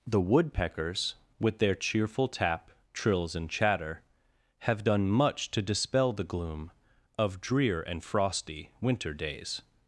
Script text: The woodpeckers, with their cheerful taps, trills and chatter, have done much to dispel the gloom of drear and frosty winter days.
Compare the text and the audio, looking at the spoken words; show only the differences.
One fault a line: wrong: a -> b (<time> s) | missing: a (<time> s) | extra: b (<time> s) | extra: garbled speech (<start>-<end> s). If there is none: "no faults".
wrong: taps -> tap (2.3 s)